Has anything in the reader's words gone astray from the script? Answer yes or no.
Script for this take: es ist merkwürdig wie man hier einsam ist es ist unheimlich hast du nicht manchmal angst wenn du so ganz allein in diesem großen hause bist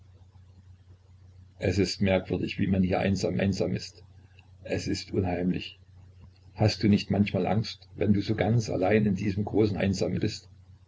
yes